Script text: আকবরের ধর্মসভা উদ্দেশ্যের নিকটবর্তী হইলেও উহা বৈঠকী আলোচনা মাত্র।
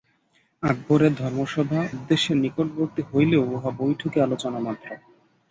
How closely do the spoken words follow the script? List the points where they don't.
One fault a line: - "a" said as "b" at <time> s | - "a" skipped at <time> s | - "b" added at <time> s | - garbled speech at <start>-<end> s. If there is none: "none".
none